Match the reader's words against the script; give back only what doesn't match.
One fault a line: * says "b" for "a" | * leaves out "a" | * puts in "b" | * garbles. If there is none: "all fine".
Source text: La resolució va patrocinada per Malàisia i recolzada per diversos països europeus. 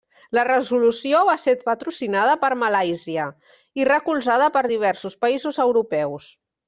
* puts in "ser"